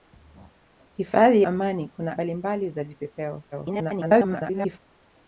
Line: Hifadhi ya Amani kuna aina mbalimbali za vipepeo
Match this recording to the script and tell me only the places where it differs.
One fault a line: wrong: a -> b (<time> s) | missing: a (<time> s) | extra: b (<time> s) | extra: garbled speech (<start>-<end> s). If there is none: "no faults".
missing: ya (1.4 s)
missing: aina (2.2 s)
extra: garbled speech (3.5-4.8 s)